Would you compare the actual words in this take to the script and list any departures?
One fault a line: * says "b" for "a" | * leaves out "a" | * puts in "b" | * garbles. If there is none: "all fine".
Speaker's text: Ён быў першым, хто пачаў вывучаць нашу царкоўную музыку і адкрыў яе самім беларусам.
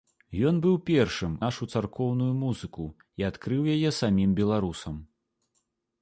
* leaves out "хто пачаў вывучаць"